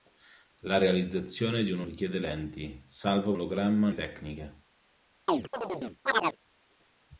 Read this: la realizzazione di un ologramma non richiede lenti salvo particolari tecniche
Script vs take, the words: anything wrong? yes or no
yes